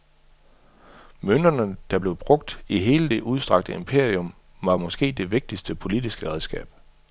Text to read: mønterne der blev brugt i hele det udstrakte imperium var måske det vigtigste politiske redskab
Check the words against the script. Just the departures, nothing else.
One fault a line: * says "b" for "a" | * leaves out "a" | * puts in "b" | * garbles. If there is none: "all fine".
all fine